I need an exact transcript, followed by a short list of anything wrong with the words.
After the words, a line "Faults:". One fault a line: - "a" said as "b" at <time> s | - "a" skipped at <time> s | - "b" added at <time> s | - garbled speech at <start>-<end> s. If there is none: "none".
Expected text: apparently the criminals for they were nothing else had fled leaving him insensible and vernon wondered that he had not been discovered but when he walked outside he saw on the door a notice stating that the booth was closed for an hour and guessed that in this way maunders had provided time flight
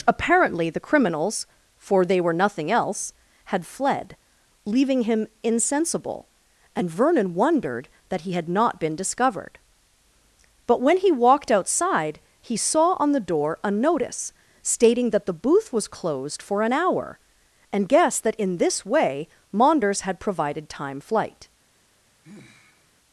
apparently the criminals for they were nothing else had fled leaving him insensible and vernon wondered that he had not been discovered but when he walked outside he saw on the door a notice stating that the booth was closed for an hour and guessed that in this way maunders had provided time flight
Faults:
none